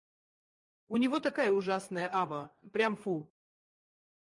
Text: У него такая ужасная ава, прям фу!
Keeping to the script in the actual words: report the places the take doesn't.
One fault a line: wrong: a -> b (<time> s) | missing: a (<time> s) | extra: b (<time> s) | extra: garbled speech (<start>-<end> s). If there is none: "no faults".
no faults